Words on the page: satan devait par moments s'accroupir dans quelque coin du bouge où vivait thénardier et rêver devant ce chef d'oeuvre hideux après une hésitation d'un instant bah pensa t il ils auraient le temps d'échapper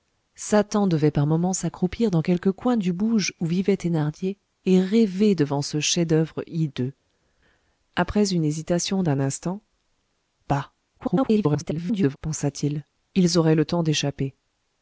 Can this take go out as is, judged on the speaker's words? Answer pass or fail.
fail